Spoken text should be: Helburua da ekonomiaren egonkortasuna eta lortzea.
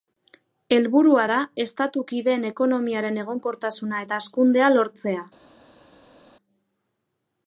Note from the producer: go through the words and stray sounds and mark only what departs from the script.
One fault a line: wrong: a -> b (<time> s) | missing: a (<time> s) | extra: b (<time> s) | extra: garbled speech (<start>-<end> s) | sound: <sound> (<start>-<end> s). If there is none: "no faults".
extra: estatu kideen (1.6 s)
extra: hazkundea (4.2 s)